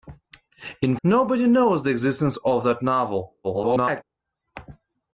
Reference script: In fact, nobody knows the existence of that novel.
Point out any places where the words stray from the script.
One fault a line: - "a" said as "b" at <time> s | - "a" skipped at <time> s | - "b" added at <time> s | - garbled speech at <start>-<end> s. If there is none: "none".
- "fact" skipped at 1.0 s
- garbled speech at 3.4-4.0 s